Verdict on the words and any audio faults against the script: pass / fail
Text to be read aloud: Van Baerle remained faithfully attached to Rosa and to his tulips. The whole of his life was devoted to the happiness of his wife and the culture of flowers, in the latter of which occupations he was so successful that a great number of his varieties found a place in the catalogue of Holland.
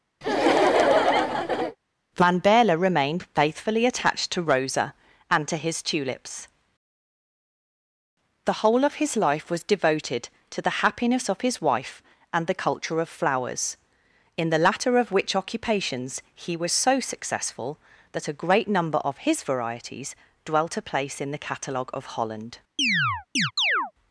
fail